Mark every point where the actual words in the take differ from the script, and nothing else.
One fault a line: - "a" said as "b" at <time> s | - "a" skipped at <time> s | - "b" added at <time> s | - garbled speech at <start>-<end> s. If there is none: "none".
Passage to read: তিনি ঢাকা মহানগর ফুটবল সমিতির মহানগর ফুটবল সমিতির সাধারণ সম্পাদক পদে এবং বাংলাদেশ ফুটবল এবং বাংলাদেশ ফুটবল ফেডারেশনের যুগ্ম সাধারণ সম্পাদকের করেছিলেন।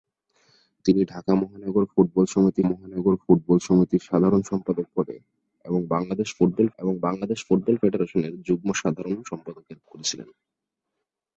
none